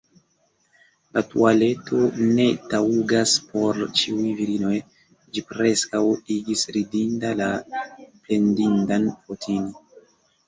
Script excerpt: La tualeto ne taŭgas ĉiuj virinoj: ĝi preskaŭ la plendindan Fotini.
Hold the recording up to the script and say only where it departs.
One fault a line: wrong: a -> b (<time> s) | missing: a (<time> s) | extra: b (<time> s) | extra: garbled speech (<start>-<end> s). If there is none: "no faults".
extra: por (3.5 s)
extra: igis ridinda (6.4 s)